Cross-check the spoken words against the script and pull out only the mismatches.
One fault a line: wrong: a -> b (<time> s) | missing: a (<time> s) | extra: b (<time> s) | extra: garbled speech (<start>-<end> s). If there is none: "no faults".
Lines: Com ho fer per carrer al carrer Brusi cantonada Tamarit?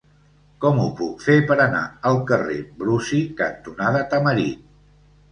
extra: puc (1.0 s)
wrong: carrer -> anar (1.6 s)